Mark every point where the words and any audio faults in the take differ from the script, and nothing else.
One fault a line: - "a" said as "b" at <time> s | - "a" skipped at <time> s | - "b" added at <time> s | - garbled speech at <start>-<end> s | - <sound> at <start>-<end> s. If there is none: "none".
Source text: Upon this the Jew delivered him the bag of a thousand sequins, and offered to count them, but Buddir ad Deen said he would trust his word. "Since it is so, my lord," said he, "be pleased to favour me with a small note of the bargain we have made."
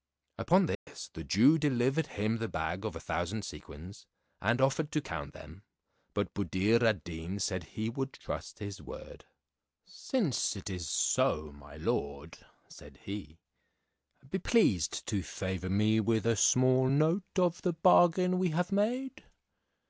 - dropout at 0.7-0.9 s